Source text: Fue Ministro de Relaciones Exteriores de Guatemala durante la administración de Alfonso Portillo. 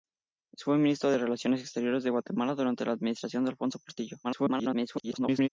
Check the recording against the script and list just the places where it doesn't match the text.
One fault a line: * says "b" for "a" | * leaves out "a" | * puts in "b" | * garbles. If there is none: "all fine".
* garbles